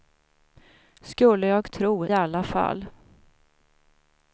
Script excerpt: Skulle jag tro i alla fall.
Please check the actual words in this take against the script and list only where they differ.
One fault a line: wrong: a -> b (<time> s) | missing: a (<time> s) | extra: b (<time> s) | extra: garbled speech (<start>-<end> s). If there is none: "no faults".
missing: i (2.1 s)